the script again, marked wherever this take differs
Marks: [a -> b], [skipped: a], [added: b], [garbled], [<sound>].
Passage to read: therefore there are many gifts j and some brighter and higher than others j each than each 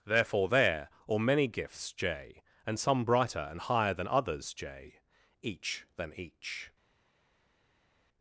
therefore there [are -> or] many gifts j and some brighter and higher than others j each than each